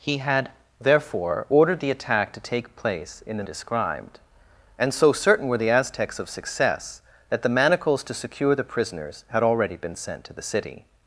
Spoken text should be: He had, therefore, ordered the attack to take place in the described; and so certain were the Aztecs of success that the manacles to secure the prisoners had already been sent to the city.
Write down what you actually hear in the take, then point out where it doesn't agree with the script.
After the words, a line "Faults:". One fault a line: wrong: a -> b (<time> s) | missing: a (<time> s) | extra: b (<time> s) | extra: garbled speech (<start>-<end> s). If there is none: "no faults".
He had, therefore, ordered the attack to take place in the described; and so certain were the Aztecs of success that the manacles to secure the prisoners had already been sent to the city.
Faults:
no faults